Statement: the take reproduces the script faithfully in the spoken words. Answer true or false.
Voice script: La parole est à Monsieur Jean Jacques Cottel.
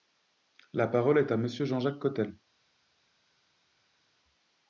true